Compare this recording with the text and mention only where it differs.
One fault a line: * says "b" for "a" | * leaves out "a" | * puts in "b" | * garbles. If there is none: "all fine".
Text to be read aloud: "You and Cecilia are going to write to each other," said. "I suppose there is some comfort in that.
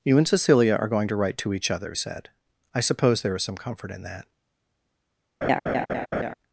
all fine